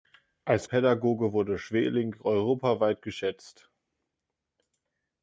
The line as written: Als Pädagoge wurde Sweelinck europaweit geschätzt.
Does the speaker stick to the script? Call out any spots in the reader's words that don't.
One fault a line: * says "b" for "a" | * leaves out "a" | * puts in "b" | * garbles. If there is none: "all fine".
all fine